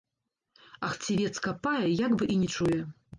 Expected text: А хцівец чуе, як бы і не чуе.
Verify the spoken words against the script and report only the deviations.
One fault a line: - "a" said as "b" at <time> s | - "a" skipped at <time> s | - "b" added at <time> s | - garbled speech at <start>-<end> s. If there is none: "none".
- "чуе" said as "капае" at 1.5 s